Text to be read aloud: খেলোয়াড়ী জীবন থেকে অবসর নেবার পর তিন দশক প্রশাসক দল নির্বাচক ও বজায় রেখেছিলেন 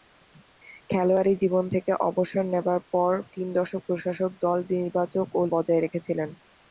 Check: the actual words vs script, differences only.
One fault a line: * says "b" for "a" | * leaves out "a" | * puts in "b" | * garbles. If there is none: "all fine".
all fine